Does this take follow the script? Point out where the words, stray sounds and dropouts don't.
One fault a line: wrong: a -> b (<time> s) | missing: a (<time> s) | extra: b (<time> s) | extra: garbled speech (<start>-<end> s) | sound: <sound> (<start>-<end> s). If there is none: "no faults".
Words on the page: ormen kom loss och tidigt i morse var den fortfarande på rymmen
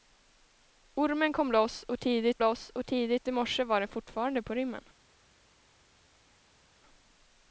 extra: loss och tidigt (2.4 s)